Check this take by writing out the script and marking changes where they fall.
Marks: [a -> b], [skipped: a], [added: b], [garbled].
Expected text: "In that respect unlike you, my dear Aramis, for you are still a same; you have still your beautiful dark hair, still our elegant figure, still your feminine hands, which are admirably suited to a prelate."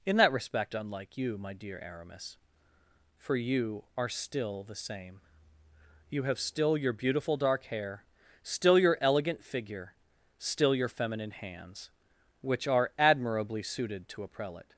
"In that respect unlike you, my dear Aramis, for you are still [a -> the] same; you have still your beautiful dark hair, still [our -> your] elegant figure, still your feminine hands, which are admirably suited to a prelate."